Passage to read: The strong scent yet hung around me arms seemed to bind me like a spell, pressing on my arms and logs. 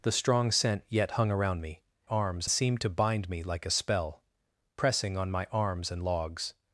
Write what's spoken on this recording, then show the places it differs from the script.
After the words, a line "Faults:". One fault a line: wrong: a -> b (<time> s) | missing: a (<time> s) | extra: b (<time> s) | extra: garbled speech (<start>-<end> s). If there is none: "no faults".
The strong scent yet hung around me arms seemed to bind me like a spell, pressing on my arms and logs.
Faults:
no faults